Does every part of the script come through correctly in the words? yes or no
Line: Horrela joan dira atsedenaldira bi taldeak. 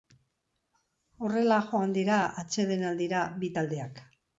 yes